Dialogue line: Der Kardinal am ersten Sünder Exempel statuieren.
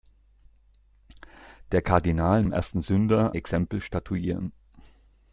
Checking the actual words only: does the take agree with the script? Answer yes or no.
yes